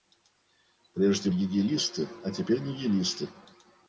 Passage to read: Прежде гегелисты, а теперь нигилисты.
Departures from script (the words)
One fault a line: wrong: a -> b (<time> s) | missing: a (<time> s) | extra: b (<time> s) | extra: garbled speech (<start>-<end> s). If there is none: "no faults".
no faults